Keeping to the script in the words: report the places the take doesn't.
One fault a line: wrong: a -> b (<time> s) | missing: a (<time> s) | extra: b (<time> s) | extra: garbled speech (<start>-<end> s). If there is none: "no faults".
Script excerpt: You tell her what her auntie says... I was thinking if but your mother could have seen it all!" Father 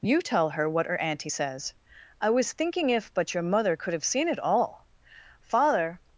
no faults